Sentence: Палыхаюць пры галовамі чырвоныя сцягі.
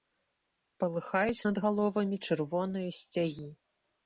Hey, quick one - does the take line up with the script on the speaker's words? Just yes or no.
no